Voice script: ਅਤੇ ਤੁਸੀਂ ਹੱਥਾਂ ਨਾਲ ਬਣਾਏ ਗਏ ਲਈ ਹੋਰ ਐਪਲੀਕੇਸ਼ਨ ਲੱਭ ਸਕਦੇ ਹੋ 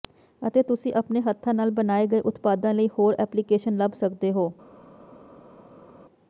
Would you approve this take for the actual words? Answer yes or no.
no